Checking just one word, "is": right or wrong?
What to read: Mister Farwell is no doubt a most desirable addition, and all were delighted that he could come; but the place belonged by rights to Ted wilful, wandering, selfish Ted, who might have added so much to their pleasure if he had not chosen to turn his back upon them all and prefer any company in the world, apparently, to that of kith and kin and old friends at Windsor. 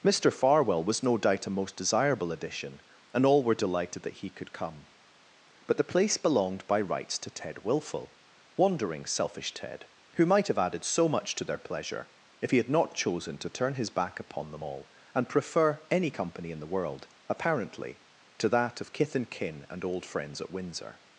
wrong